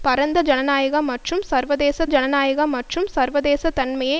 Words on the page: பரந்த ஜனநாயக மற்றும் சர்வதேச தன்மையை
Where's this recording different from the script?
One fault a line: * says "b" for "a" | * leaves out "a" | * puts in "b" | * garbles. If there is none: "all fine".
* puts in "ஜனநாயக மற்றும் சர்வதேச"